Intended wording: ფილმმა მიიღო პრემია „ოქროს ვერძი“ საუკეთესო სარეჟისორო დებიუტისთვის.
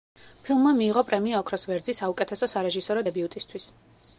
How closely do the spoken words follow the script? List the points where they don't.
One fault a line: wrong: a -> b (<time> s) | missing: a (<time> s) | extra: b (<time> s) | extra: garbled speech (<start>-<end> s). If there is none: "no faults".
no faults